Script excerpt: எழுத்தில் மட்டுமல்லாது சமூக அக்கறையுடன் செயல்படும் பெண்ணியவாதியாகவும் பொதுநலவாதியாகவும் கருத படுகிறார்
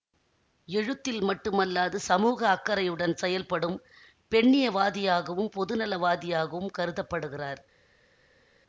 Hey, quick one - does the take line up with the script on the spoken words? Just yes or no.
yes